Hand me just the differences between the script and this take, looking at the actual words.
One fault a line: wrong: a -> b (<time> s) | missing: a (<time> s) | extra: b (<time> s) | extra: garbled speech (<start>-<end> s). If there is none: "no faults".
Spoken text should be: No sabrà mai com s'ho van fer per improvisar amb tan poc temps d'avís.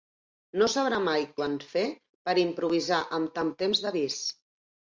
missing: com s'ho (1.2 s)
missing: poc (3.5 s)